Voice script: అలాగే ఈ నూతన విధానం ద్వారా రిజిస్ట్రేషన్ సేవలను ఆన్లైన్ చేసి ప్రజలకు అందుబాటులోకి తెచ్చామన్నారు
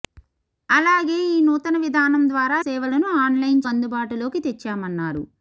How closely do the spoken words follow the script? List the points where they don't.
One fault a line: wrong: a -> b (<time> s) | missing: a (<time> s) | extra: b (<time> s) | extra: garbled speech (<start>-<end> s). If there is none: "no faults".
missing: రిజిస్ట్రేషన్ (2.6 s)
missing: చేసి ప్రజలకు (3.6 s)